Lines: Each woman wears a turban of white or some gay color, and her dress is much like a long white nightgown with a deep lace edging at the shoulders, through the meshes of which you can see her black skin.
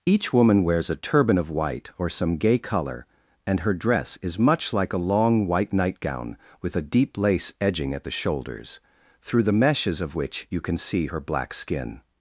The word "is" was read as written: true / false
true